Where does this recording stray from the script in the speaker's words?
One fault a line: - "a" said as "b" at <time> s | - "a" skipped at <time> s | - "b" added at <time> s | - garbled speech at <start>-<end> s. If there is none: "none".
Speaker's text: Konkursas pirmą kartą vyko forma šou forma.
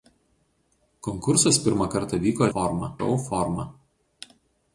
none